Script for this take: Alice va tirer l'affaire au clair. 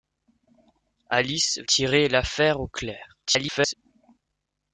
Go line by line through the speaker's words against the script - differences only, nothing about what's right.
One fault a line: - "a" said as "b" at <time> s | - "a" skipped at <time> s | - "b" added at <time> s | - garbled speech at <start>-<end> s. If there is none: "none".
- "va" skipped at 1.6 s
- garbled speech at 3.3-3.7 s